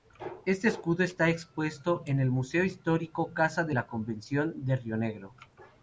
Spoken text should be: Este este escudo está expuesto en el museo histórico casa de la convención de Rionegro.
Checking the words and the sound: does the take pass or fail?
fail